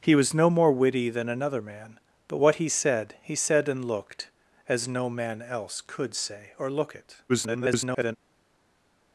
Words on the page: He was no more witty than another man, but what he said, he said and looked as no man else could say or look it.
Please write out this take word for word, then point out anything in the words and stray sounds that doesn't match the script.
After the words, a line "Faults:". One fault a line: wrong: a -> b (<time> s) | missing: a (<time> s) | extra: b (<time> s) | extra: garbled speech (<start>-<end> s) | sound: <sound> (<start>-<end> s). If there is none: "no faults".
He was no more witty than another man, but what he said, he said and looked as no man else could say or look it. [garbled]
Faults:
extra: garbled speech (7.3-8.2 s)